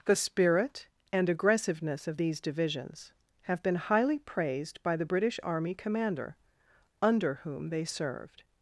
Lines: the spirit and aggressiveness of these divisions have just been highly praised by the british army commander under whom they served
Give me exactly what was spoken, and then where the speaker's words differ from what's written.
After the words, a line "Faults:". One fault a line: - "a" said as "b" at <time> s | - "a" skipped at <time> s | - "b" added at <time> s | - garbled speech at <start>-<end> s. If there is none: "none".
the spirit and aggressiveness of these divisions have been highly praised by the british army commander under whom they served
Faults:
- "just" skipped at 3.6 s